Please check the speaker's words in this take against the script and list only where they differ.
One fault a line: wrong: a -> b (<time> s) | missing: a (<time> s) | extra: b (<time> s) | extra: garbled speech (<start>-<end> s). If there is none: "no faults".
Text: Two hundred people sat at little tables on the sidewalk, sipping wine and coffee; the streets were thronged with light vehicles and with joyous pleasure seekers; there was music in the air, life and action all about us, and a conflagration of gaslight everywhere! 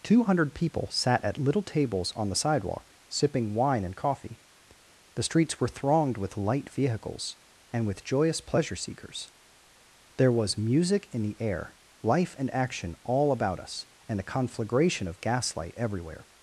no faults